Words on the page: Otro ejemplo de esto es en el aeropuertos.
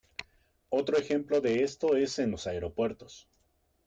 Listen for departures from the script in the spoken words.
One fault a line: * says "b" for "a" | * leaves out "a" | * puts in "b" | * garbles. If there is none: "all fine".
* says "los" for "el"